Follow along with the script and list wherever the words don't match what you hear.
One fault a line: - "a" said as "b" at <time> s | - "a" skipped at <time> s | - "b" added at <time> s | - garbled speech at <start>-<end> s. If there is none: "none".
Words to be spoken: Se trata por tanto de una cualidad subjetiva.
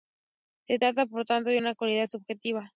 none